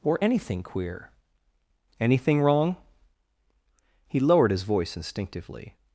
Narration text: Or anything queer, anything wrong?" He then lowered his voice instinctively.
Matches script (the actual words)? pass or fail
fail